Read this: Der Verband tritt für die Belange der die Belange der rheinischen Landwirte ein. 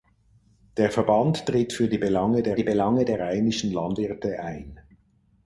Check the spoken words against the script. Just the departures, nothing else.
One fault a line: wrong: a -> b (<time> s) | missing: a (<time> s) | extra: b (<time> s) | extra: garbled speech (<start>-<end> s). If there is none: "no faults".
no faults